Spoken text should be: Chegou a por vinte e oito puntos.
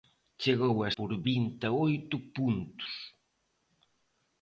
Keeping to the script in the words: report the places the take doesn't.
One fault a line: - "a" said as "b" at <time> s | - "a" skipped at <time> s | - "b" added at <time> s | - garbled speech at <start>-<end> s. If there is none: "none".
none